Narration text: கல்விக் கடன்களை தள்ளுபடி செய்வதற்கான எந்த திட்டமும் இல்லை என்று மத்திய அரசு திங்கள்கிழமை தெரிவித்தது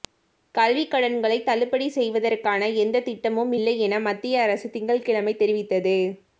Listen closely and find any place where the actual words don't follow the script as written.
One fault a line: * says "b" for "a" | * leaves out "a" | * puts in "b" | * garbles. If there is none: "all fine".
* says "என" for "என்று"